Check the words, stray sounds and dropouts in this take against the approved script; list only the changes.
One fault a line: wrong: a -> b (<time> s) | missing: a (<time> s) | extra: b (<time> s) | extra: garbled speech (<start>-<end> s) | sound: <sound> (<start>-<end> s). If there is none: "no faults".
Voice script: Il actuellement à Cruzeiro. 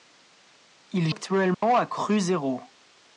sound: dropout (1.5-1.6 s)